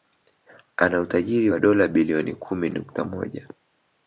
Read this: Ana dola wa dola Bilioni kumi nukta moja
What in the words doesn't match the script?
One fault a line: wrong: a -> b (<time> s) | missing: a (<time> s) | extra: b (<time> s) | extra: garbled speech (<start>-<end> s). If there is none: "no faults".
wrong: dola -> utajiri (1.0 s)